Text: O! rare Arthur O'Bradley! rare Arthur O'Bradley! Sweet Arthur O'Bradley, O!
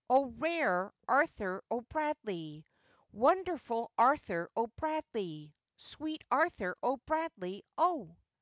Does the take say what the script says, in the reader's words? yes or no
no